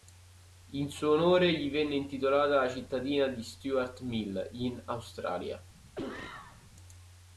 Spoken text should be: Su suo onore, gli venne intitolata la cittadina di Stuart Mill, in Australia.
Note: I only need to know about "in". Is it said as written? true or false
true